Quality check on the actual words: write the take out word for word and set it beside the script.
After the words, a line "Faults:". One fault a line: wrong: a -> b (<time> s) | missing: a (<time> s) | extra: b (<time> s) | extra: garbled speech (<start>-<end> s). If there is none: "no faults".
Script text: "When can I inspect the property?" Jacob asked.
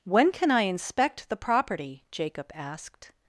"When can I inspect the property?" Jacob asked.
Faults:
no faults